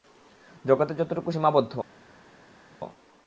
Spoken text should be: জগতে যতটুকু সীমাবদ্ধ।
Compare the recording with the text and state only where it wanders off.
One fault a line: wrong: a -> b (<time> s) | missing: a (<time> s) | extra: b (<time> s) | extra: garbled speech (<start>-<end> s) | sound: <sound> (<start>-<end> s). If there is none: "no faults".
no faults